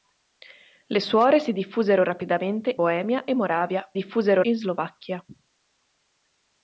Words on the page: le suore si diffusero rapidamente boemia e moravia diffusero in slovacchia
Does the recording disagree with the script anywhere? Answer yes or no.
no